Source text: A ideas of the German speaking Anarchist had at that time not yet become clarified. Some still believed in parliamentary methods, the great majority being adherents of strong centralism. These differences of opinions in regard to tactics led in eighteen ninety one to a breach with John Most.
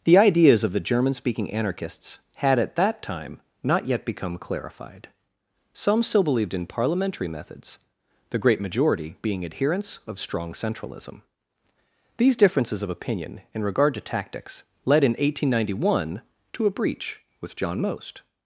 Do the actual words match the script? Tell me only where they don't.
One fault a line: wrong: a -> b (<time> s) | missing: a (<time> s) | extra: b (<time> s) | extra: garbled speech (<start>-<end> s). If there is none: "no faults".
wrong: A -> The (0.0 s)
wrong: Anarchist -> Anarchists (1.5 s)
wrong: opinions -> opinion (12.9 s)